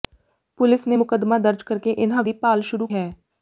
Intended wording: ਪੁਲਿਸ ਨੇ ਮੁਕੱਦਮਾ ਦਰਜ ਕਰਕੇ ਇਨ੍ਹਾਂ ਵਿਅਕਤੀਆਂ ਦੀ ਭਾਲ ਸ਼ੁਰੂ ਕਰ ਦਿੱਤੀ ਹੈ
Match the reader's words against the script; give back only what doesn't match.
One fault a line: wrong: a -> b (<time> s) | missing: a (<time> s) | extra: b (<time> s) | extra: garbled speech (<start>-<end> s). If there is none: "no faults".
missing: ਵਿਅਕਤੀਆਂ (2.2 s)
missing: ਕਰ ਦਿੱਤੀ (2.9 s)